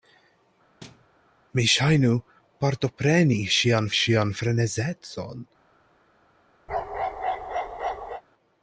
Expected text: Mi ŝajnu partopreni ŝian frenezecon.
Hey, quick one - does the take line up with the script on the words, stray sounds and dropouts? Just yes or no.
no